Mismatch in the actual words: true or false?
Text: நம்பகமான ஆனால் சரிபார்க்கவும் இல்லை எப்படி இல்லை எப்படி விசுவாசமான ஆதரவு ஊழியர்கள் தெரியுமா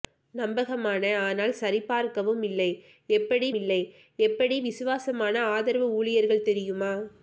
false